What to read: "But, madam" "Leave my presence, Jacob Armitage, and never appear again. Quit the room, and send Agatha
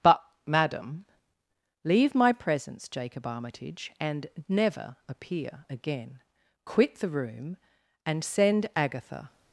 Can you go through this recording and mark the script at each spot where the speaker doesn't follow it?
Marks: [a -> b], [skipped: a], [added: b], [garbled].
"But, madam" "Leave my presence, Jacob Armitage, and never appear again. Quit the room, and send Agatha